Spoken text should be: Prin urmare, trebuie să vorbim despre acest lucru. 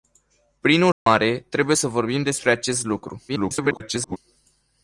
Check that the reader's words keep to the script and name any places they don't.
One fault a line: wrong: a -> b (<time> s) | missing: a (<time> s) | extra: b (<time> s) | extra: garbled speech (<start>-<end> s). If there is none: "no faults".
extra: garbled speech (3.3-4.2 s)